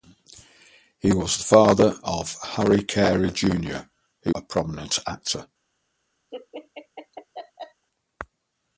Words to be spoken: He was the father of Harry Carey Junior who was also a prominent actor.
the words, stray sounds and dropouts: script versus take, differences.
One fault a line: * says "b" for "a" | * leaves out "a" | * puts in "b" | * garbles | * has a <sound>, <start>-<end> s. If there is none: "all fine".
* leaves out "was also"
* has a laugh, 6.3-7.9 s